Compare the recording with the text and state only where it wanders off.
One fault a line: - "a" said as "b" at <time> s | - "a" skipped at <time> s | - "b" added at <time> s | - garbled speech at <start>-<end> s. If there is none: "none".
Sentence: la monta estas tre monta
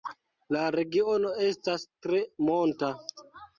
- "monta" said as "regiono" at 0.8 s